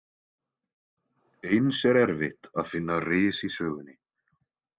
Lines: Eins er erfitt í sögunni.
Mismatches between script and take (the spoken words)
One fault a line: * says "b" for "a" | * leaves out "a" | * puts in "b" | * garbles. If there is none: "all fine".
* puts in "að finna ris"